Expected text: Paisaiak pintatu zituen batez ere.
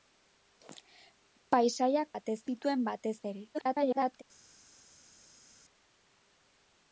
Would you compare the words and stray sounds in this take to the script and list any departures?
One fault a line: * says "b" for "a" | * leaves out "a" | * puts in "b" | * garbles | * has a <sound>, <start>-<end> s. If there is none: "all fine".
* says "batez" for "pintatu"
* garbles